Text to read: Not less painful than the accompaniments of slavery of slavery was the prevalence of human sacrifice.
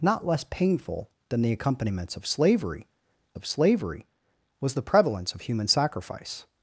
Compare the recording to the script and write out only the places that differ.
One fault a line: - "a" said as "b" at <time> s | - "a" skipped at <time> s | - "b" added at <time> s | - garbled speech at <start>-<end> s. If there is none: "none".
none